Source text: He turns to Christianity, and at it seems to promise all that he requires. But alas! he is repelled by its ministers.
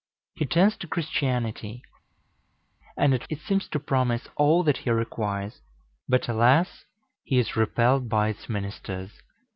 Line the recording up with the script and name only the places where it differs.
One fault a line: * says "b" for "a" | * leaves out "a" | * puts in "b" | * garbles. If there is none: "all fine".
all fine